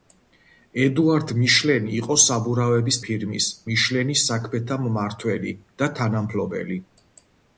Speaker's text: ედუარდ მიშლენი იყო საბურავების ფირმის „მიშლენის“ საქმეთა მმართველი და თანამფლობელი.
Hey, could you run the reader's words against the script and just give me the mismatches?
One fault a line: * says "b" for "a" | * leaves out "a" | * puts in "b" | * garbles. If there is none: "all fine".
all fine